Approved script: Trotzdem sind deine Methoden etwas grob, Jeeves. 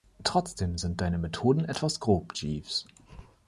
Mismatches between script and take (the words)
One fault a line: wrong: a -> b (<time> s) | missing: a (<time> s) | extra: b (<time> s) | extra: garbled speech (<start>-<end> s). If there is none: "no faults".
no faults